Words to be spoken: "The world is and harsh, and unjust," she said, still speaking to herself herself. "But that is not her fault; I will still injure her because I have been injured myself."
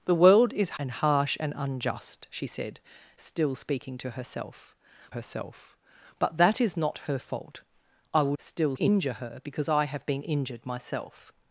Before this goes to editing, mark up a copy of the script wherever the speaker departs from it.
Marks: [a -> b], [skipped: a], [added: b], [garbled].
"The world is and harsh, and unjust," she said, still speaking to herself herself. "But that is not her fault; I will still injure her because I have been injured myself."